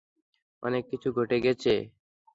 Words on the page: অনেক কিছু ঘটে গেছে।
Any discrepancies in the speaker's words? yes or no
no